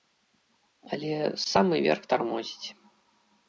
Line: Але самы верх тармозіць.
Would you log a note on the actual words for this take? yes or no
no